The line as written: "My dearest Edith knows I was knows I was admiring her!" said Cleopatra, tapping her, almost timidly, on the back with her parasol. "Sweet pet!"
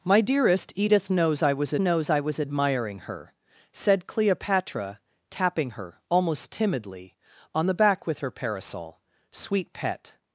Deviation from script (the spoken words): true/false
false